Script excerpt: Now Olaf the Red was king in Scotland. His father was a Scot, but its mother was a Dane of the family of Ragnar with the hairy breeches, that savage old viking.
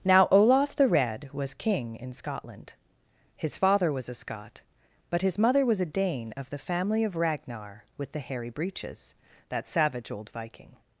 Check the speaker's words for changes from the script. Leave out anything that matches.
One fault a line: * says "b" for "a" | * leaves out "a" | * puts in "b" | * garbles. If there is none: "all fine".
* says "his" for "its"